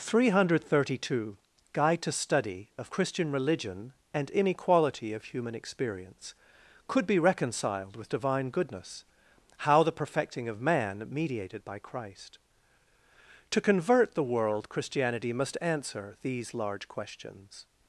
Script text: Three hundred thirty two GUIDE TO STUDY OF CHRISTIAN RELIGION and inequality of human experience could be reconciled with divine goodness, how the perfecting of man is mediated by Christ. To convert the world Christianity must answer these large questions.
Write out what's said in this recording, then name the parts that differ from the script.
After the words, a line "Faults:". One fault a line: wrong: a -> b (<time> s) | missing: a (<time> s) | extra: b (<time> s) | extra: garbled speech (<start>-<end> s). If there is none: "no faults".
Three hundred thirty two GUIDE TO STUDY OF CHRISTIAN RELIGION and inequality of human experience could be reconciled with divine goodness, how the perfecting of man mediated by Christ. To convert the world Christianity must answer these large questions.
Faults:
missing: is (11.1 s)